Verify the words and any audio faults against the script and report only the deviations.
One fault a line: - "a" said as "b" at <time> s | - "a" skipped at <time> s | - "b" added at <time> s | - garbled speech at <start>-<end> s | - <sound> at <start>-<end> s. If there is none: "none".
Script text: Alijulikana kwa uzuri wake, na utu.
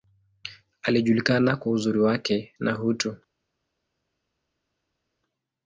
none